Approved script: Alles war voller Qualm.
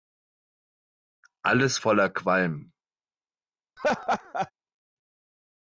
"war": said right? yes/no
no